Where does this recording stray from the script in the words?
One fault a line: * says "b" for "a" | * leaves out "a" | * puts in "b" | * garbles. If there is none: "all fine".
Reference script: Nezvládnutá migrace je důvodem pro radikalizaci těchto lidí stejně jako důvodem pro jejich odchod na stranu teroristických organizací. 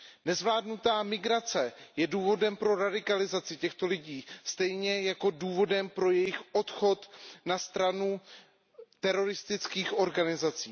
all fine